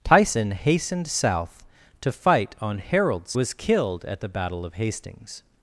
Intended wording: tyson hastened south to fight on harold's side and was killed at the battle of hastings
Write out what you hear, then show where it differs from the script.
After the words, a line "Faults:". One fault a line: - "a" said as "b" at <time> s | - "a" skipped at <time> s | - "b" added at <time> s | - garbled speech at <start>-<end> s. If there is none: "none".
tyson hastened south to fight on harold's was killed at the battle of hastings
Faults:
- "side and" skipped at 3.3 s